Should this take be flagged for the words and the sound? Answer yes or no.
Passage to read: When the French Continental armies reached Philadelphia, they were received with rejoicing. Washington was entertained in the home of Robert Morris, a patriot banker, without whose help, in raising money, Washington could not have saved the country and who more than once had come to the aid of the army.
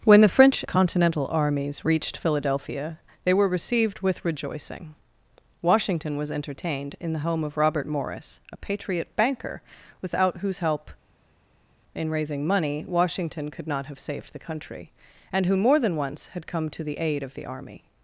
no